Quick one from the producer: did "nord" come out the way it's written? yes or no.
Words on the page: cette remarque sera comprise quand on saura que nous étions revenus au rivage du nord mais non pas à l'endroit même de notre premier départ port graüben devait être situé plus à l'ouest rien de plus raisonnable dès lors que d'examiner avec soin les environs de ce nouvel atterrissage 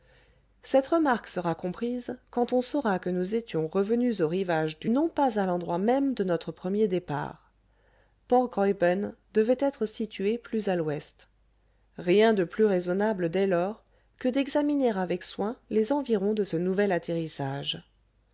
no